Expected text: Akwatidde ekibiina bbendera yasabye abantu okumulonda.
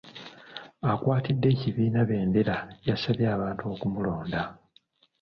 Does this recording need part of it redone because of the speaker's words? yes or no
no